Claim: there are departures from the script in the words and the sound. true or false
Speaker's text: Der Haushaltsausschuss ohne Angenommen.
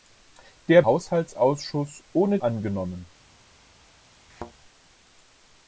true